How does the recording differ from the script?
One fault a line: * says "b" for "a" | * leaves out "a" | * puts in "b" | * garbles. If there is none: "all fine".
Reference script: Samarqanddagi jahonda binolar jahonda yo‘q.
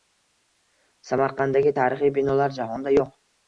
* says "tarixiy" for "jahonda"